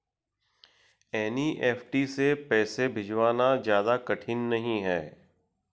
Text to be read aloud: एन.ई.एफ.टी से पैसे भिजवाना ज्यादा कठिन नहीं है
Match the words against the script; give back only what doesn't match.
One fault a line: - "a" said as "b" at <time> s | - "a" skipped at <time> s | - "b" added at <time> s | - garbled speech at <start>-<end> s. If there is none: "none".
none